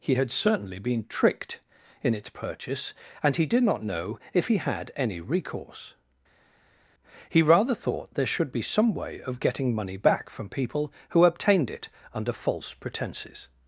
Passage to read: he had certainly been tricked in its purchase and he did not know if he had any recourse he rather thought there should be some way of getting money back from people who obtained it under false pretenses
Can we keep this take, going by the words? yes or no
yes